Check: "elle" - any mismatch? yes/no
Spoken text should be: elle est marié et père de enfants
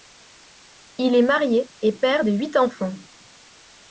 yes